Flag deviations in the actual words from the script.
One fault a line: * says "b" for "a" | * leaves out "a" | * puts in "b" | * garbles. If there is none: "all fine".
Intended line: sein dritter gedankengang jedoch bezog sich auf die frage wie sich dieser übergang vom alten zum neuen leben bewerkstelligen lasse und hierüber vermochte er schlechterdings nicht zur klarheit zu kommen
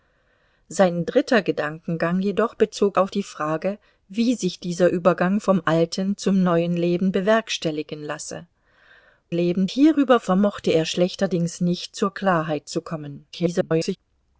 * leaves out "sich"
* says "leben" for "und"
* garbles